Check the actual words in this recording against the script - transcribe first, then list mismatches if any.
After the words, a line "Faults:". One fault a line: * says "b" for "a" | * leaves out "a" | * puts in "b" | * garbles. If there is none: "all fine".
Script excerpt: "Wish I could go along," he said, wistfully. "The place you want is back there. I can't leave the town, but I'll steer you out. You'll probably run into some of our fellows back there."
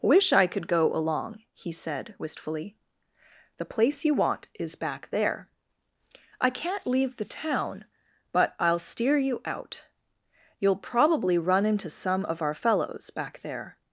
"Wish I could go along," he said, wistfully. "The place you want is back there. I can't leave the town, but I'll steer you out. You'll probably run into some of our fellows back there."
Faults:
all fine